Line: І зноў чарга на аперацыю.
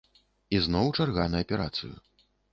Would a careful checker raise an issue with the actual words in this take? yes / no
no